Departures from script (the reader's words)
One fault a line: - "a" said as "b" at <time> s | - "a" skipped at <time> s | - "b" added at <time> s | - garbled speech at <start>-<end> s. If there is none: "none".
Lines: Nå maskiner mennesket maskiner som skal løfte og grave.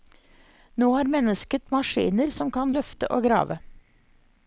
- "maskiner" said as "har" at 0.9 s
- "skal" said as "kan" at 2.6 s